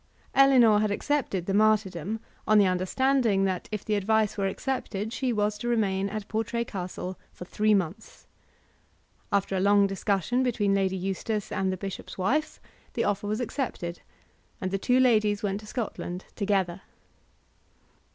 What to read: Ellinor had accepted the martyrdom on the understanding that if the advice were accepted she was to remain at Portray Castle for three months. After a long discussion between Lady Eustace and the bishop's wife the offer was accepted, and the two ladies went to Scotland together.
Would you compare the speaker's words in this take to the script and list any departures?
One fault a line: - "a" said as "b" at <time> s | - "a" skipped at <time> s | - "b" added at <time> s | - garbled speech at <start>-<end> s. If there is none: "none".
none